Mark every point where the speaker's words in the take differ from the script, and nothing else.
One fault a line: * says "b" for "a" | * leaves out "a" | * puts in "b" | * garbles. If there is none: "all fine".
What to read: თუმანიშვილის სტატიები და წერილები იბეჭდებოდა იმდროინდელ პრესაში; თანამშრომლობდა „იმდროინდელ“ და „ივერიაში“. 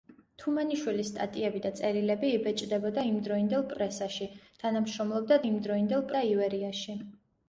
all fine